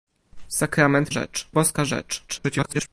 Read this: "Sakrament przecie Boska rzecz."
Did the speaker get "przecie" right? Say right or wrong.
wrong